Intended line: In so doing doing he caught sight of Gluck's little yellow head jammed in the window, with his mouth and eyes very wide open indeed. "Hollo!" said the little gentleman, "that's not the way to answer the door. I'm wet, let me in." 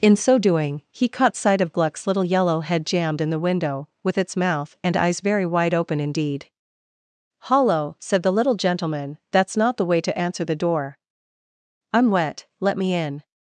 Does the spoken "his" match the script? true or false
false